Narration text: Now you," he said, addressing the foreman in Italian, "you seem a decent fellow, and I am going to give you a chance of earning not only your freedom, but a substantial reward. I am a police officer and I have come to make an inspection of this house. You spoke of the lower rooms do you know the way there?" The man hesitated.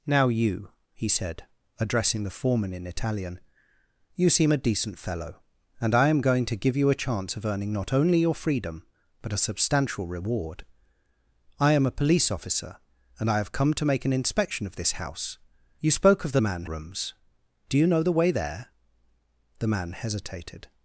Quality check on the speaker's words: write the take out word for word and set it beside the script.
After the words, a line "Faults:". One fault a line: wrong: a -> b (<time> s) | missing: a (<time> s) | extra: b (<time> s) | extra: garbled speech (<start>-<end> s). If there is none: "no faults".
Now you," he said, addressing the foreman in Italian, "you seem a decent fellow, and I am going to give you a chance of earning not only your freedom, but a substantial reward. I am a police officer and I have come to make an inspection of this house. You spoke of the man rooms do you know the way there?" The man hesitated.
Faults:
wrong: lower -> man (16.4 s)